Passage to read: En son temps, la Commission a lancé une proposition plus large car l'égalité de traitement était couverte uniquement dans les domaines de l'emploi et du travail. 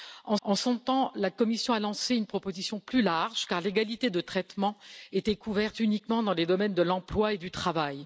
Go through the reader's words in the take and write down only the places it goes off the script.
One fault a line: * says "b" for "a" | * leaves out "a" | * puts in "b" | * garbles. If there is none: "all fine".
* puts in "en"